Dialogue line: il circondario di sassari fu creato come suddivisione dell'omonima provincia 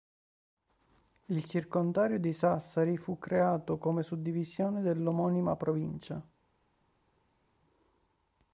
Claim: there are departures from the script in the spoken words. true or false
false